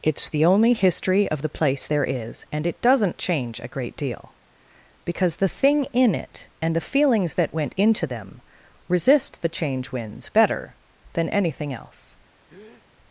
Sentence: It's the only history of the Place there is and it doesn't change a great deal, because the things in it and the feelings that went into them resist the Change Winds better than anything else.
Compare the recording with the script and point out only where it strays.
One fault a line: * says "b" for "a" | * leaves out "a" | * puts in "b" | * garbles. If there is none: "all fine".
* says "thing" for "things"